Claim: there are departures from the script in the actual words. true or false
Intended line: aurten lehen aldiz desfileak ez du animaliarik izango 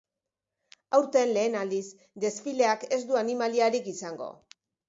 false